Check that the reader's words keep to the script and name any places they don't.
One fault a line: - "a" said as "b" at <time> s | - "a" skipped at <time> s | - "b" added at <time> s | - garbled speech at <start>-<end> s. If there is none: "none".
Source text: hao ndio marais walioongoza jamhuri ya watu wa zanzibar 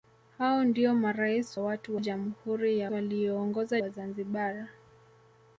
- "walioongoza" said as "watu" at 1.6 s
- "watu" said as "walioongoza" at 2.9 s